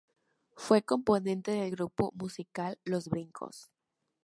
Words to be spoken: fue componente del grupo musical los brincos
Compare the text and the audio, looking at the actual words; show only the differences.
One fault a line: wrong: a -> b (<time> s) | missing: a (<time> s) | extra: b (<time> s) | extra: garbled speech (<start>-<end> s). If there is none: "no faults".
no faults